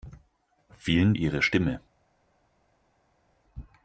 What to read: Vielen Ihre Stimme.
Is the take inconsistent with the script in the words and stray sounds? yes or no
no